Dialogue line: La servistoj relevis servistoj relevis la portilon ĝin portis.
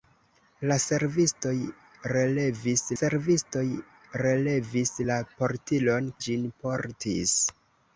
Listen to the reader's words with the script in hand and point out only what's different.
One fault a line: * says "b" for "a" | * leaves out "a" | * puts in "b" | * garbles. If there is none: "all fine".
all fine